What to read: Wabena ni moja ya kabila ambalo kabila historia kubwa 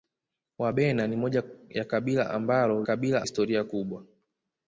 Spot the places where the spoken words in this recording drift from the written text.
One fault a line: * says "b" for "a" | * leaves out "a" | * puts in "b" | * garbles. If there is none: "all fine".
all fine